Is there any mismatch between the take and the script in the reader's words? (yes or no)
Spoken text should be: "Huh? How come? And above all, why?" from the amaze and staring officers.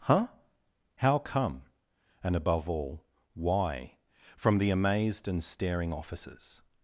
yes